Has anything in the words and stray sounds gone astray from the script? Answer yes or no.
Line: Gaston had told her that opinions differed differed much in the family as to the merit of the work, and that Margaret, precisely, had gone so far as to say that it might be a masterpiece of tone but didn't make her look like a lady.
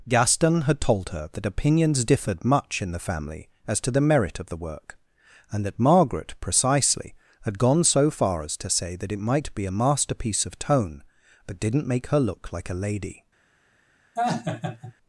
yes